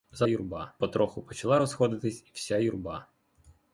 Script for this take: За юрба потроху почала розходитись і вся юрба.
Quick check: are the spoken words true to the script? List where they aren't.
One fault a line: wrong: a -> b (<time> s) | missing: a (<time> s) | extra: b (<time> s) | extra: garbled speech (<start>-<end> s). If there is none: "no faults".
no faults